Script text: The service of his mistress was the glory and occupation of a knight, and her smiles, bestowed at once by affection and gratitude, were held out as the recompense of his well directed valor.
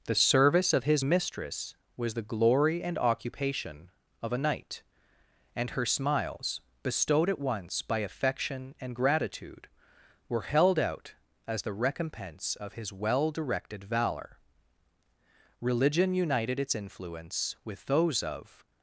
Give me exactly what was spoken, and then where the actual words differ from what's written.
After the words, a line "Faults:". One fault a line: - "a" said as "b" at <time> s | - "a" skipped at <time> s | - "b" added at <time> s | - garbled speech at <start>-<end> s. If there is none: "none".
The service of his mistress was the glory and occupation of a knight, and her smiles, bestowed at once by affection and gratitude, were held out as the recompense of his well directed valor. Religion united its influence with those of
Faults:
- "Religion united its influence with those of" added at 15.6 s